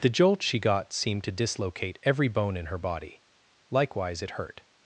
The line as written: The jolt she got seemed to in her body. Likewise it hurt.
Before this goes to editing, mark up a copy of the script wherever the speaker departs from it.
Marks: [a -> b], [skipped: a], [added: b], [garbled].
The jolt she got seemed to [added: dislocate every bone] in her body. Likewise it hurt.